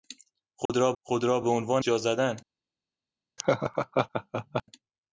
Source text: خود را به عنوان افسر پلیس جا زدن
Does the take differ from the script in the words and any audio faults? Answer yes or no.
yes